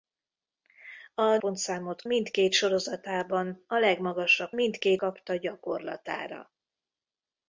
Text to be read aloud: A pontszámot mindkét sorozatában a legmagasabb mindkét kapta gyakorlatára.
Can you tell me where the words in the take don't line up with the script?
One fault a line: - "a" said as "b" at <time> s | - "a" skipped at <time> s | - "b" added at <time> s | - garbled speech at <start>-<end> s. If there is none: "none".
none